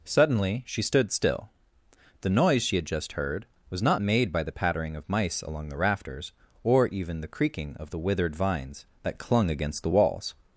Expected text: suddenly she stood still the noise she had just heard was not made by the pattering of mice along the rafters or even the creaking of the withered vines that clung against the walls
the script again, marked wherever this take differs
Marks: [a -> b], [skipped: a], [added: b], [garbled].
suddenly she stood still the noise she had just heard was not made by the pattering of mice along the rafters or even the creaking of the withered vines that clung against the walls